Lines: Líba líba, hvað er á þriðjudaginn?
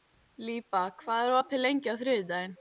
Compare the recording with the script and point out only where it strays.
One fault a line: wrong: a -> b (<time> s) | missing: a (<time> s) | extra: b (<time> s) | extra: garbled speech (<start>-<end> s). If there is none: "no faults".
missing: líba (0.8 s)
extra: opið lengi (1.4 s)